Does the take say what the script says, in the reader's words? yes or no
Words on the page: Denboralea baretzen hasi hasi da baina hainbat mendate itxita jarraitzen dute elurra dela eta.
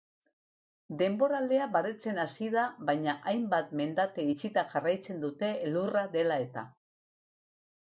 no